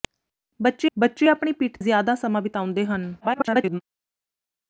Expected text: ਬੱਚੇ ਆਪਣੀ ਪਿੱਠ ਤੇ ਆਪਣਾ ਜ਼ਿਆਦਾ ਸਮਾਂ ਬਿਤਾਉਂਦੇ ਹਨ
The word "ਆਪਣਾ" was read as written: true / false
false